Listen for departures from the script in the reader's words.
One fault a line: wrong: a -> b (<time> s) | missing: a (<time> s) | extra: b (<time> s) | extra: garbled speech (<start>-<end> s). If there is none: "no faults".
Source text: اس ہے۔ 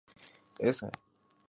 no faults